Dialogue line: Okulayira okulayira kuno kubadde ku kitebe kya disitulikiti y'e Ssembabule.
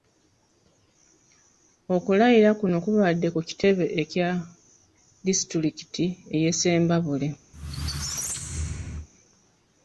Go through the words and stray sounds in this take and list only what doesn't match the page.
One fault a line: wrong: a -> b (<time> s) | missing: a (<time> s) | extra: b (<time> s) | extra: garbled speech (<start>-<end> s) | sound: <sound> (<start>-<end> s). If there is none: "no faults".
missing: okulayira (2.5 s)
sound: squeak (7.5-9.1 s)